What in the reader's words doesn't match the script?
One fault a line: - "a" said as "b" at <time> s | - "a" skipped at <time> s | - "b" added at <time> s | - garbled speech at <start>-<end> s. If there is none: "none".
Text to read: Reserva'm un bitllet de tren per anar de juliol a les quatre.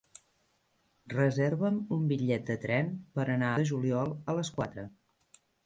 none